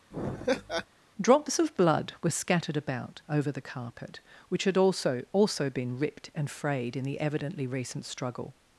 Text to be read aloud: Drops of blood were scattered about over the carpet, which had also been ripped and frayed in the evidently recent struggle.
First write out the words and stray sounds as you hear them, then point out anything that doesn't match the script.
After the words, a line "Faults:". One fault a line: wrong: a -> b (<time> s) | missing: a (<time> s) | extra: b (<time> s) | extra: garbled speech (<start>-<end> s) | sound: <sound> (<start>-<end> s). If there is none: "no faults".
Drops of blood were scattered about over the carpet, which had also also been ripped and frayed in the evidently recent struggle.
Faults:
sound: laugh (0.1-0.9 s)
extra: also (5.3 s)